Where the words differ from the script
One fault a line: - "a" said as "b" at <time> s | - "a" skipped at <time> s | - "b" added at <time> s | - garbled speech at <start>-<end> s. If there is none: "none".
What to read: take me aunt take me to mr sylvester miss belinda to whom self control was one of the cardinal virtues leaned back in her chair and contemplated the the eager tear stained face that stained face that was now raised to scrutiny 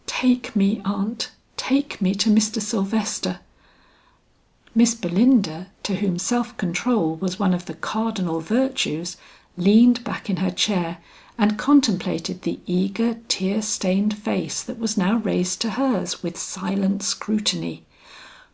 - "the" skipped at 12.6 s
- "stained face that" skipped at 14.8 s
- "hers with silent" added at 15.7 s